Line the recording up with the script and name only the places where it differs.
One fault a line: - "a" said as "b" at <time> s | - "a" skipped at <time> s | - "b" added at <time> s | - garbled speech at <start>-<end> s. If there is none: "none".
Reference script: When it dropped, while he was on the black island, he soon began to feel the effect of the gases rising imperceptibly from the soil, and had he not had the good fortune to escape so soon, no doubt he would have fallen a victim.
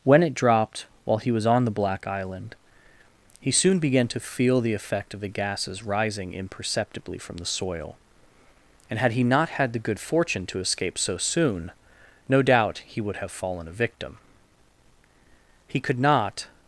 - "He could not" added at 15.7 s